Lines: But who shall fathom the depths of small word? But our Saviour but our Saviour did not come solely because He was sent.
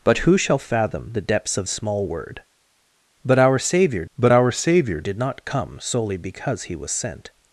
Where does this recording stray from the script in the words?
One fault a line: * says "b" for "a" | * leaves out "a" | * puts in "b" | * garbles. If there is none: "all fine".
all fine